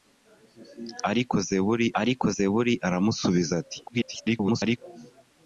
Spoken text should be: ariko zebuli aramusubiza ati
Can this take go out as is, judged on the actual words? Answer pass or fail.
fail